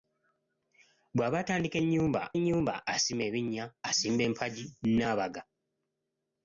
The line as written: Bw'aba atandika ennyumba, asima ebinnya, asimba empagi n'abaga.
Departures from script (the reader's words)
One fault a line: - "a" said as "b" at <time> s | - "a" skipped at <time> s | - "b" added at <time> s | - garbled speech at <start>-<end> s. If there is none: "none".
- "ennyumba" added at 2.4 s